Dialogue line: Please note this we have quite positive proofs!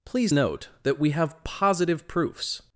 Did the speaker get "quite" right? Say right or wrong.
wrong